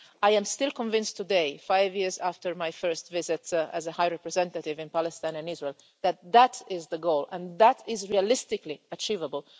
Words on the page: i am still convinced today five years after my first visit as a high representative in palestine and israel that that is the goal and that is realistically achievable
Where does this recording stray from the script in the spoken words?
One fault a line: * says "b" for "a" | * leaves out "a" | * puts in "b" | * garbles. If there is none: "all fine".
all fine